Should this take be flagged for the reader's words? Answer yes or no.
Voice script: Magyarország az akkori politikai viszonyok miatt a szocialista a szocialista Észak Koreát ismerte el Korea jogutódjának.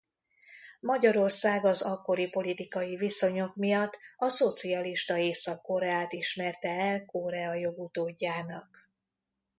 yes